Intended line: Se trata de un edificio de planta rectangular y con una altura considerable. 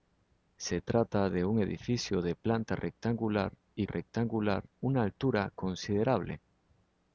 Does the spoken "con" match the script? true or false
false